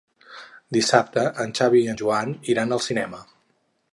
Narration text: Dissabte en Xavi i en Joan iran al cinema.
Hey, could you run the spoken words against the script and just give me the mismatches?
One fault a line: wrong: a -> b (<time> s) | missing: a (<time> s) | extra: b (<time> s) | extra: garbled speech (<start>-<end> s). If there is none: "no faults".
no faults